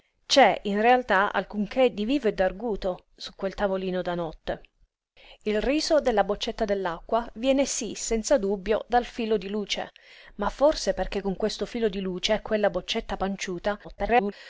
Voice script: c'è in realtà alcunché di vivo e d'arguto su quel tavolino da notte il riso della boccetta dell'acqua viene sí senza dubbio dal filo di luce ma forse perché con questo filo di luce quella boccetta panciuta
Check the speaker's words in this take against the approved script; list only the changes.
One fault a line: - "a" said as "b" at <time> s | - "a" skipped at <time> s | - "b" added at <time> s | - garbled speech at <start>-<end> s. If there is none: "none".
- garbled speech at 13.8-14.3 s